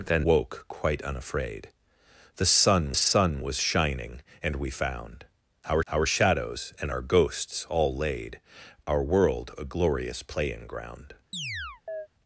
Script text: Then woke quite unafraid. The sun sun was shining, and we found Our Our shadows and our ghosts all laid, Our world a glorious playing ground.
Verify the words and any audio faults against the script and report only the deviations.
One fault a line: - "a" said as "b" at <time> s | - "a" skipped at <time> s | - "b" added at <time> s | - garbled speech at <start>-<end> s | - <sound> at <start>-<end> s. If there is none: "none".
- chirp at 11.3-12.1 s